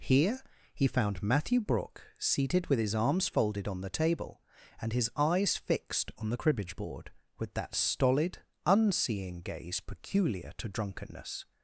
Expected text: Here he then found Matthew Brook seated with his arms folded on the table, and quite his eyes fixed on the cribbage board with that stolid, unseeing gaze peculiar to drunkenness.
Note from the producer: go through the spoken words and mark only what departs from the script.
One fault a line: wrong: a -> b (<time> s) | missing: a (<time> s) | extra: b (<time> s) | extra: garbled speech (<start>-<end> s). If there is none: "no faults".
missing: then (0.9 s)
missing: quite (4.9 s)